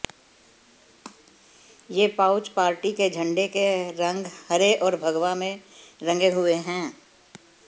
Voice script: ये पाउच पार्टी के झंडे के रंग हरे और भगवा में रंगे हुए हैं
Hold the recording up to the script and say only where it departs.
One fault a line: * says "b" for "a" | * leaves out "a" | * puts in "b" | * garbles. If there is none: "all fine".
all fine